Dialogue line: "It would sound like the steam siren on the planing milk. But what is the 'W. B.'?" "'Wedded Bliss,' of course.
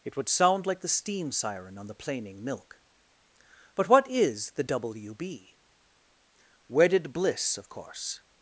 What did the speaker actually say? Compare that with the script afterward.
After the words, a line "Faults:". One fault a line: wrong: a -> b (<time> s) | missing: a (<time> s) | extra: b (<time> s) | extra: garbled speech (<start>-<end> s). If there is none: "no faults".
"It would sound like the steam siren on the planing milk. But what is the 'W. B.'?" "'Wedded Bliss,' of course.
Faults:
no faults